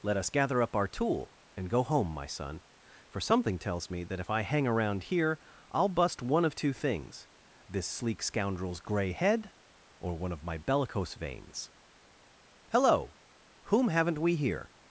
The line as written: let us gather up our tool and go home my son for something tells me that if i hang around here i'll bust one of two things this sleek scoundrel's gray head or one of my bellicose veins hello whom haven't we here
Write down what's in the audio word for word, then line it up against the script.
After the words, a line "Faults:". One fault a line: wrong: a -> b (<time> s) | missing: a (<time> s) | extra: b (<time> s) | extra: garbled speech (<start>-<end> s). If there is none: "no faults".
let us gather up our tool and go home my son for something tells me that if i hang around here i'll bust one of two things this sleek scoundrel's gray head or one of my bellicose veins hello whom haven't we here
Faults:
no faults